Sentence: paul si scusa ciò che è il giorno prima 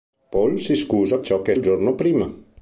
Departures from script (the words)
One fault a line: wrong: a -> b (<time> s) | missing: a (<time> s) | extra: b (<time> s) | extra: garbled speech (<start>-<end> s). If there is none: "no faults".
no faults